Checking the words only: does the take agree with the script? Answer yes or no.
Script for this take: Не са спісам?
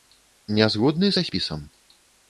no